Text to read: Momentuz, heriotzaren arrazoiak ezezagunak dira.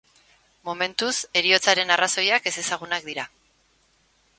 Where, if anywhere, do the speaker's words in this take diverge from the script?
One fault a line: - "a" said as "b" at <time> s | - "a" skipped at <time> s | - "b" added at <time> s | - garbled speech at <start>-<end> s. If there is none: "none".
none